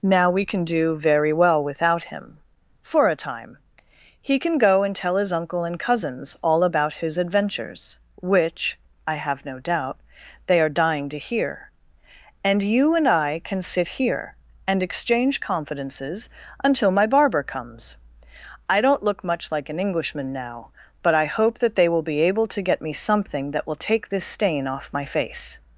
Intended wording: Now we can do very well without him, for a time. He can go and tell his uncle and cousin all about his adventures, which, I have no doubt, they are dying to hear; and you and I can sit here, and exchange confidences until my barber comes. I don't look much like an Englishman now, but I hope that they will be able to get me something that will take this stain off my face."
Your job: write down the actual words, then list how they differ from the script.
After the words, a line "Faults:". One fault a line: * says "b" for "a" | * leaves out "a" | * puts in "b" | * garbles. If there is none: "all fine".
Now we can do very well without him, for a time. He can go and tell his uncle and cousins all about his adventures, which, I have no doubt, they are dying to hear; and you and I can sit here, and exchange confidences until my barber comes. I don't look much like an Englishman now, but I hope that they will be able to get me something that will take this stain off my face."
Faults:
* says "cousins" for "cousin"